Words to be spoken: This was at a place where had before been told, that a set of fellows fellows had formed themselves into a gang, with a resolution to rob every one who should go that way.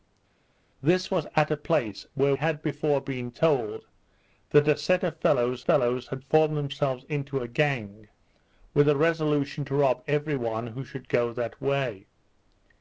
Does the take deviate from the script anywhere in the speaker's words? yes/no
no